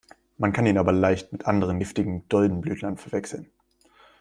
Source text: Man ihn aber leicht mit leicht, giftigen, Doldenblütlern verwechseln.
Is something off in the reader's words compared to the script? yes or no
yes